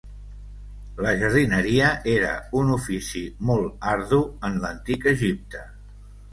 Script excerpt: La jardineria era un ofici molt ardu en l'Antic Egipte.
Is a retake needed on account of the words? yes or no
no